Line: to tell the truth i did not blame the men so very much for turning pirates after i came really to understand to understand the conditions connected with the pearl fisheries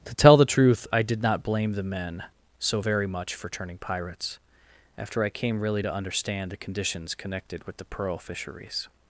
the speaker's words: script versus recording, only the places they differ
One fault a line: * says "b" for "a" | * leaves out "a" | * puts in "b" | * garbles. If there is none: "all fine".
* leaves out "to understand"